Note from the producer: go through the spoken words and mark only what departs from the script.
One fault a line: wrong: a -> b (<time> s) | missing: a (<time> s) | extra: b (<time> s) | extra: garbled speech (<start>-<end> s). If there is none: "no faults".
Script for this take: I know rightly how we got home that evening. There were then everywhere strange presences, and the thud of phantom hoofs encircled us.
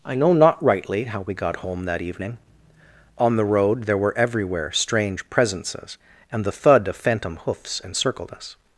extra: not (0.3 s)
extra: On the road (3.2 s)
missing: then (4.2 s)